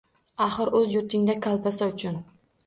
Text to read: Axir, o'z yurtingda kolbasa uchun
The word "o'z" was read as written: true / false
true